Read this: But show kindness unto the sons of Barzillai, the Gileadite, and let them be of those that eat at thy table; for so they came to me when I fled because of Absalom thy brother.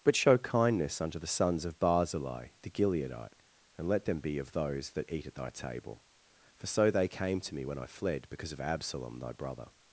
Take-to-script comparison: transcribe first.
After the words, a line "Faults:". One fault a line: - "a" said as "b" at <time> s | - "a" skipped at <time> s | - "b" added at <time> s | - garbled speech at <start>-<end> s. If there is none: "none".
But show kindness unto the sons of Barzillai, the Gileadite, and let them be of those that eat at thy table; for so they came to me when I fled because of Absalom thy brother.
Faults:
none